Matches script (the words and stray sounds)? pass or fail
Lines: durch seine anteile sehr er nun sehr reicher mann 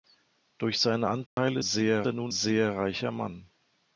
fail